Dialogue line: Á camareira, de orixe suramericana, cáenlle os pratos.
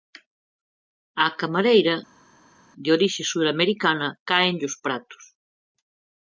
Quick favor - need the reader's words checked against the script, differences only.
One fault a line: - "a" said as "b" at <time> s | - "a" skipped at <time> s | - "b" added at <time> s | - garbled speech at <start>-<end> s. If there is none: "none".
none